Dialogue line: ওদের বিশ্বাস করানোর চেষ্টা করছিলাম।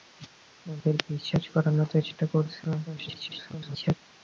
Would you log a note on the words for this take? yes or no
yes